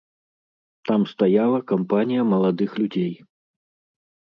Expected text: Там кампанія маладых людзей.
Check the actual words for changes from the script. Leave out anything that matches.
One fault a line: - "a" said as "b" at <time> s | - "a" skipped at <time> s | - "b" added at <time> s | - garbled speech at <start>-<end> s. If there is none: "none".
- "стаяла" added at 1.1 s